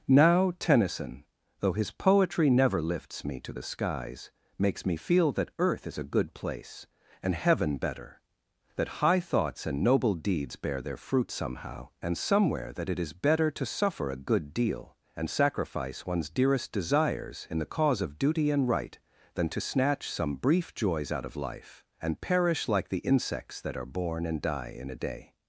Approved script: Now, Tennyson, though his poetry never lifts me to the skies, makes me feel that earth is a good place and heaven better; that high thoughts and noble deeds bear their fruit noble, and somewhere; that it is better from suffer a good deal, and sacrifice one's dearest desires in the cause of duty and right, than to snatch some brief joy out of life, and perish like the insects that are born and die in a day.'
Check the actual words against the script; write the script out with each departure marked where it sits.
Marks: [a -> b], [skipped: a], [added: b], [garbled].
Now, Tennyson, though his poetry never lifts me to the skies, makes me feel that earth is a good place and heaven better; that high thoughts and noble deeds bear their fruit [noble, -> somehow] and somewhere; that it is better [from -> to] suffer a good deal, and sacrifice one's dearest desires in the cause of duty and right, than to snatch some brief [joy -> joys] out of life, and perish like the insects that are born and die in a day.'